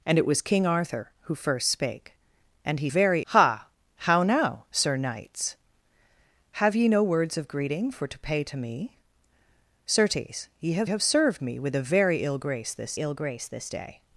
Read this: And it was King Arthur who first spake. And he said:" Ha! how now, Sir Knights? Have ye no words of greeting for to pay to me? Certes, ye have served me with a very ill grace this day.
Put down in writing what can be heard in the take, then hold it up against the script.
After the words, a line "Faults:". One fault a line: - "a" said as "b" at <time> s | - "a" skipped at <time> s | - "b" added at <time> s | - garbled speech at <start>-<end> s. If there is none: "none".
And it was King Arthur who first spake. And he very:" Ha! how now, Sir Knights? Have ye no words of greeting for to pay to me? Certes, ye have have served me with a very ill grace this ill grace this day.
Faults:
- "said" said as "very" at 2.9 s
- "have" added at 10.8 s
- "ill grace this" added at 13.0 s